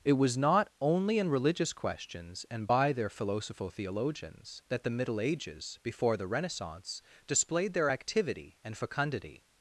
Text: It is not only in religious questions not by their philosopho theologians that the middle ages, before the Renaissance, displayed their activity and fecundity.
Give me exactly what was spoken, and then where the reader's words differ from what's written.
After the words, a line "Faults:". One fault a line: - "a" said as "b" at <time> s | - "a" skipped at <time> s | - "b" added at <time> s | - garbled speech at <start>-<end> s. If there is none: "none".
It was not only in religious questions and by their philosopho theologians that the middle ages, before the Renaissance, displayed their activity and fecundity.
Faults:
- "is" said as "was" at 0.1 s
- "not" said as "and" at 2.5 s